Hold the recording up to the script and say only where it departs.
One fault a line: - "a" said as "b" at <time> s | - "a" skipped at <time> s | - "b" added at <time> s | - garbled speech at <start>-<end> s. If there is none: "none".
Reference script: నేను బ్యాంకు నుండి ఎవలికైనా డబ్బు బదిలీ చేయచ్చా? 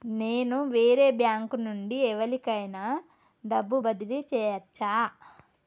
- "వేరే" added at 0.7 s